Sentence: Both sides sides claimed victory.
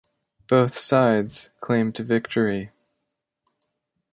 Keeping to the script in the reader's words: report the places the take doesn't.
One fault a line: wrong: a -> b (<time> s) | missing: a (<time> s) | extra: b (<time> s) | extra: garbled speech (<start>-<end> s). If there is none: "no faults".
missing: sides (1.5 s)